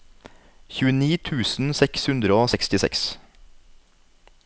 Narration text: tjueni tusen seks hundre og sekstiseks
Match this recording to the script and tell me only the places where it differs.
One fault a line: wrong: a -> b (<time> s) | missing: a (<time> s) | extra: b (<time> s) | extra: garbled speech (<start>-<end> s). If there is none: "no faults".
no faults